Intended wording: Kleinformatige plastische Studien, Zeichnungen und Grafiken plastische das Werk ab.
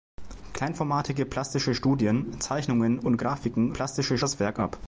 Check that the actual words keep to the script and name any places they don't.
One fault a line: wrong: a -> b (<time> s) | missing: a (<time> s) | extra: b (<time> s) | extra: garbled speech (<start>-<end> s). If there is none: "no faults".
no faults